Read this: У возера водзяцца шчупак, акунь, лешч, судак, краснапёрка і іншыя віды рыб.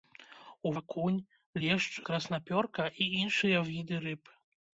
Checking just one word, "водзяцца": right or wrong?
wrong